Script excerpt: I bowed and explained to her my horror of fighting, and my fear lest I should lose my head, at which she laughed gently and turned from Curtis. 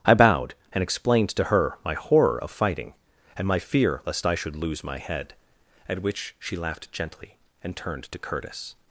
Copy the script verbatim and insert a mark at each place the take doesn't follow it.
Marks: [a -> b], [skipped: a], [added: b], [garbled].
I bowed and explained to her my horror of fighting, and my fear lest I should lose my head, at which she laughed gently and turned [from -> to] Curtis.